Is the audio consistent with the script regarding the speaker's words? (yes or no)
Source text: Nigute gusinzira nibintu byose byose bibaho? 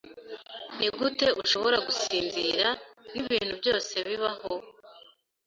no